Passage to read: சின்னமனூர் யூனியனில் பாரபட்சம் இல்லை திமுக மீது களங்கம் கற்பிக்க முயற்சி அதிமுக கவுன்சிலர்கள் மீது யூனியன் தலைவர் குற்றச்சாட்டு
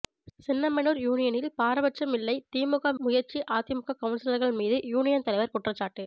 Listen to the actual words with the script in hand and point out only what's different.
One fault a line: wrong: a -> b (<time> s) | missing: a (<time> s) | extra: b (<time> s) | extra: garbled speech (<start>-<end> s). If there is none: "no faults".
missing: மீது களங்கம் கற்பிக்க (2.9 s)